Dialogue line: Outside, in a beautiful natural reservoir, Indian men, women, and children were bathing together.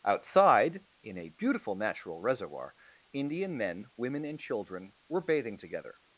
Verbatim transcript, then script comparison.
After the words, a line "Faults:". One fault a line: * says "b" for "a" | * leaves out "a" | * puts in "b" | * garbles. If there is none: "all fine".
Outside, in a beautiful natural reservoir, Indian men, women, and children were bathing together.
Faults:
all fine